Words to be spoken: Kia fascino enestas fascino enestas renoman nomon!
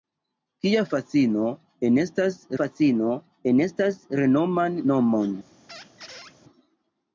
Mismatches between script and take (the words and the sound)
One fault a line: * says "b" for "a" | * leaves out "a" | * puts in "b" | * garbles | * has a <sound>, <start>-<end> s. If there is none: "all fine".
* has a squeak, 5.7-6.4 s